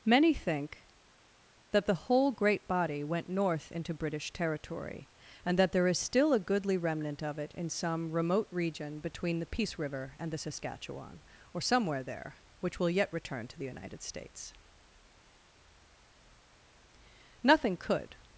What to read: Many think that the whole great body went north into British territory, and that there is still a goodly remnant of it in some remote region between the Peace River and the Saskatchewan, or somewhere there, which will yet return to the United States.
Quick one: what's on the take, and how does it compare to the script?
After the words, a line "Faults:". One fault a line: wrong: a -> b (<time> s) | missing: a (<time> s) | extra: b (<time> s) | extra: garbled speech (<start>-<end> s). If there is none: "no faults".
Many think that the whole great body went north into British territory, and that there is still a goodly remnant of it in some remote region between the Peace River and the Saskatchewan, or somewhere there, which will yet return to the United States. Nothing could
Faults:
extra: Nothing could (17.4 s)